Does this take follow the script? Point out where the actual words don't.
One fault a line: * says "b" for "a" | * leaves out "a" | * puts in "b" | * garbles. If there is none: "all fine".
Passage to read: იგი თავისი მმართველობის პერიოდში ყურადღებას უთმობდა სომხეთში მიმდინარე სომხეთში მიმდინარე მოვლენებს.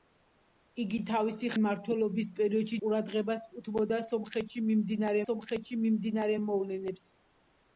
all fine